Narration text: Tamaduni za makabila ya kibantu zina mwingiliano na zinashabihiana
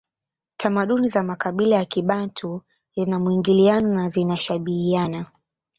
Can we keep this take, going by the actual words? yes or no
yes